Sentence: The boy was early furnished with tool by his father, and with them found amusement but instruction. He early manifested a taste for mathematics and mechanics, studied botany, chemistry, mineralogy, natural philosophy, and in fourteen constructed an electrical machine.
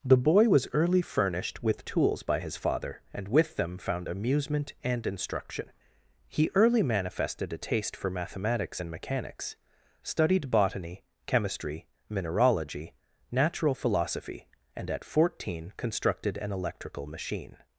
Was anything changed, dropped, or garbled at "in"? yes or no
yes